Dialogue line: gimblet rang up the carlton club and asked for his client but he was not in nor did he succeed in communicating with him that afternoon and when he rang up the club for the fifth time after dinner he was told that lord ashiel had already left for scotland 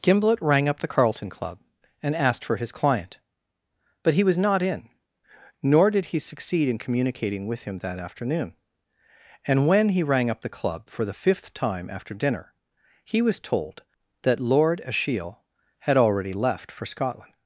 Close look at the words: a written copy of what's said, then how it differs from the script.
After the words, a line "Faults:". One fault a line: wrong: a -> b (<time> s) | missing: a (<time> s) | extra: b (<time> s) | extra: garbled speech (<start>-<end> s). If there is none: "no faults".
gimblet rang up the carlton club and asked for his client but he was not in nor did he succeed in communicating with him that afternoon and when he rang up the club for the fifth time after dinner he was told that lord ashiel had already left for scotland
Faults:
no faults